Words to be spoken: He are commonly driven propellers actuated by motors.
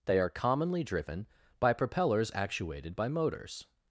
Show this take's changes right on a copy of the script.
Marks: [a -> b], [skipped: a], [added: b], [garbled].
[He -> They] are commonly driven [added: by] propellers actuated by motors.